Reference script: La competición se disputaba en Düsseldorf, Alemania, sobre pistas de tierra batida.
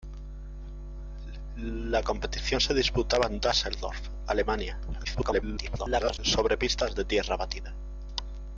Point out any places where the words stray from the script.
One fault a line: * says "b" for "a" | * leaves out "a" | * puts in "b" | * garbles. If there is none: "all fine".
* garbles